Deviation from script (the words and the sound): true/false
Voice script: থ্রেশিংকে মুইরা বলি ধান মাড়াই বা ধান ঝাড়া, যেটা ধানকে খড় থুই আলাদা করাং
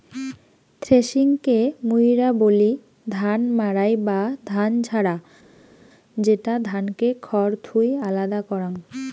false